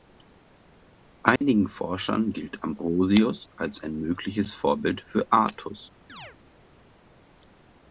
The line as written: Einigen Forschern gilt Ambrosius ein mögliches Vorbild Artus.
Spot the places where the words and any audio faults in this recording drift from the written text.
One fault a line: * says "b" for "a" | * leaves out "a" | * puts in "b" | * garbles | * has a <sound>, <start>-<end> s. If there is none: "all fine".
* has a dropout, 1.4-1.4 s
* puts in "als"
* puts in "für"
* has a chirp, 6.1-6.4 s